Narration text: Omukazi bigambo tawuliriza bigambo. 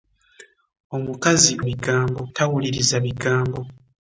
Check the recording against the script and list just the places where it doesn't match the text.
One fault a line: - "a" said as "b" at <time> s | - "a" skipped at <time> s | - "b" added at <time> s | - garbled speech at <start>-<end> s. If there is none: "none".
none